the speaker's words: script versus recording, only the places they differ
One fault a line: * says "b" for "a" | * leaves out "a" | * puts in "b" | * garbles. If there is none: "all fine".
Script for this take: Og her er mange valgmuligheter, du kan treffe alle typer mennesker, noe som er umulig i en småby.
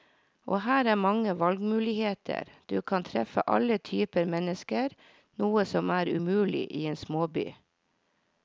all fine